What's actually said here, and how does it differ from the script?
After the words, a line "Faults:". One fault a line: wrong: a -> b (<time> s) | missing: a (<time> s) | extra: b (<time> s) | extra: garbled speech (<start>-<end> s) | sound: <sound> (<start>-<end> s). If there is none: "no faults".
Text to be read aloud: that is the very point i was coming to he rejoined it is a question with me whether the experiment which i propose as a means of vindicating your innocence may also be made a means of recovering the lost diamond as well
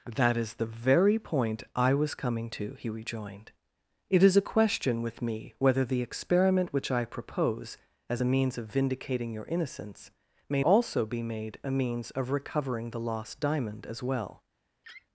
that is the very point i was coming to he rejoined it is a question with me whether the experiment which i propose as a means of vindicating your innocence may also be made a means of recovering the lost diamond as well
Faults:
sound: laugh (14.8-15.1 s)